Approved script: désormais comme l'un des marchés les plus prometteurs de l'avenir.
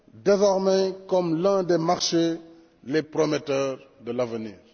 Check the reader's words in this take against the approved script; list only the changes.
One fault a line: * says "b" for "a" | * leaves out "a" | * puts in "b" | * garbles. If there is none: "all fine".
* leaves out "plus"